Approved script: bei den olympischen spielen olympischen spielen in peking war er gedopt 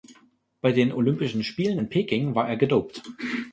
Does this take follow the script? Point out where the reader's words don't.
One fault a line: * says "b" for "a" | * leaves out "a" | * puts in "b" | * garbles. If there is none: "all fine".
* leaves out "olympischen spielen"